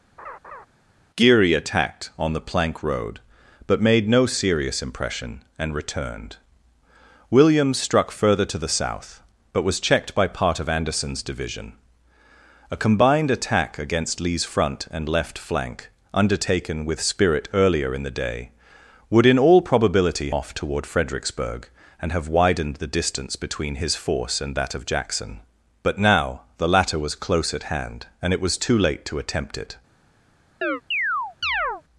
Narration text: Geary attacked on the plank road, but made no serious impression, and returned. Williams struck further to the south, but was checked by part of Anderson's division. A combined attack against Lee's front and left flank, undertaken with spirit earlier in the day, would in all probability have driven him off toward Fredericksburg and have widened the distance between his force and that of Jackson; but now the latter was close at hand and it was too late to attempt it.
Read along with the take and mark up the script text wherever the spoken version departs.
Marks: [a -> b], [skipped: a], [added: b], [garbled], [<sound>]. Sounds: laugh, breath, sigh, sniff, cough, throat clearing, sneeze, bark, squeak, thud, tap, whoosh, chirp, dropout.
[laugh] Geary attacked on the plank road, but made no serious impression, and returned. Williams struck further to the south, but was checked by part of Anderson's division. A combined attack against Lee's front and left flank, undertaken with spirit earlier in the day, would in all probability [skipped: have driven him] off toward Fredericksburg and have widened the distance between his force and that of Jackson; but now the latter was close at hand and it was too late to attempt it. [chirp]